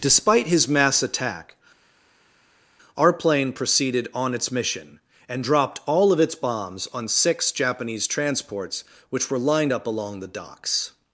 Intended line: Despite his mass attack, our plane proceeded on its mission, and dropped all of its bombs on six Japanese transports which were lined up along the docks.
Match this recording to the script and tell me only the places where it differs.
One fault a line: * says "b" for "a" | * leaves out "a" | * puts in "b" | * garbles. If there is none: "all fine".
all fine